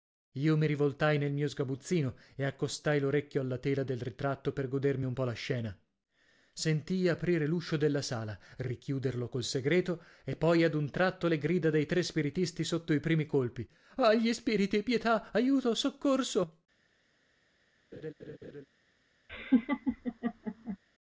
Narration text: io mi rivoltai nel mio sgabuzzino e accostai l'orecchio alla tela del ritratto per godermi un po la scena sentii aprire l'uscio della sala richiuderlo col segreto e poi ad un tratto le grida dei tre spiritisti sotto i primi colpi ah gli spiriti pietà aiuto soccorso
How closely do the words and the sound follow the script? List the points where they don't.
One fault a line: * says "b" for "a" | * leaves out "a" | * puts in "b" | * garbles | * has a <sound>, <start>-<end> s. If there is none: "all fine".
* has a laugh, 17.9-18.7 s
* has a laugh, 19.3-20.8 s